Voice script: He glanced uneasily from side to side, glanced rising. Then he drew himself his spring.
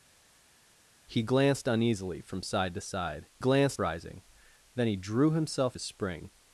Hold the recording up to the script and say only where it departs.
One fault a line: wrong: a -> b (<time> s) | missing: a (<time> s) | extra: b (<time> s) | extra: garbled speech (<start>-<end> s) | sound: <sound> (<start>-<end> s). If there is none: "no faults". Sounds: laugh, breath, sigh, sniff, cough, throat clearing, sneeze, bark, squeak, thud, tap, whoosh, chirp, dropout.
no faults